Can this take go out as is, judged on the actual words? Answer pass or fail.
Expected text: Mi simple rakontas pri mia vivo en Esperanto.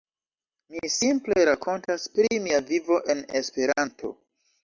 pass